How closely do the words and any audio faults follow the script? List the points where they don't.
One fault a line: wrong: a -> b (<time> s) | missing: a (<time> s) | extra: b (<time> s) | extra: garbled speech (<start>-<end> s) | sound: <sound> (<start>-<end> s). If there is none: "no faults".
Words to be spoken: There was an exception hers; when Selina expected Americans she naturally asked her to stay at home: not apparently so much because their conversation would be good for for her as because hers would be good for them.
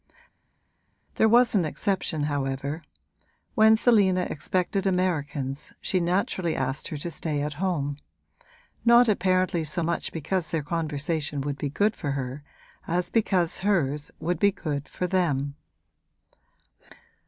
wrong: hers -> however (2.3 s)
missing: for (12.1 s)